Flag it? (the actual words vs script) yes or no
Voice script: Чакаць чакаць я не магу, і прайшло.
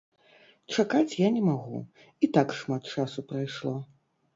yes